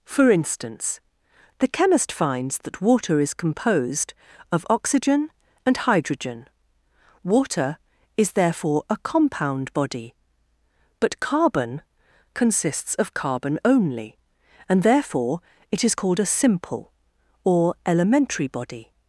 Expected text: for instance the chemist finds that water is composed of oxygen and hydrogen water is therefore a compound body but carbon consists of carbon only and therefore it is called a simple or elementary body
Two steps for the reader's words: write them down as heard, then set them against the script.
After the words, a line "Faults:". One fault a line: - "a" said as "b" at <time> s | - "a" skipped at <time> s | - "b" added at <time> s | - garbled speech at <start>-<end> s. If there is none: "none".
for instance the chemist finds that water is composed of oxygen and hydrogen water is therefore a compound body but carbon consists of carbon only and therefore it is called a simple or elementary body
Faults:
none